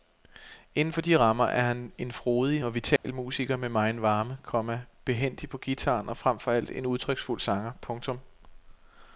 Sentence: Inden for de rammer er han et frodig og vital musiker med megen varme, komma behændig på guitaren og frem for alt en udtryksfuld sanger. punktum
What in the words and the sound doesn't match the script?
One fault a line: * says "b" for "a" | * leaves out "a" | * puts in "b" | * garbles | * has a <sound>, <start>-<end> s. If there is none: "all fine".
* says "en" for "et"
* has a dropout, 3.0-3.0 s